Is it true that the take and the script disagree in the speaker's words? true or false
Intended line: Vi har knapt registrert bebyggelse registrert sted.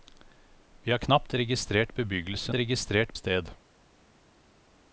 false